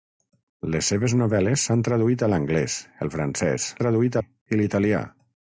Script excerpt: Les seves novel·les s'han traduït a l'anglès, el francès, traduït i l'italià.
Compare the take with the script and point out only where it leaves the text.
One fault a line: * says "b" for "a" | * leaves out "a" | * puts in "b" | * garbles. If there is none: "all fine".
all fine